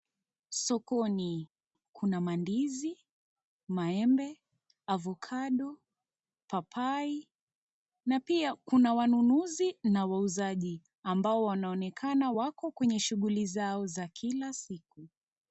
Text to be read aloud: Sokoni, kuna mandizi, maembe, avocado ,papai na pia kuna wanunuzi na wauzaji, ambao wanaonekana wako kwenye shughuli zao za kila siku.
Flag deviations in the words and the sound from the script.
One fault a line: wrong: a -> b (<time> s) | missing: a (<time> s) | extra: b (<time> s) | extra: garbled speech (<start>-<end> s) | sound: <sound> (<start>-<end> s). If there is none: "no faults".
no faults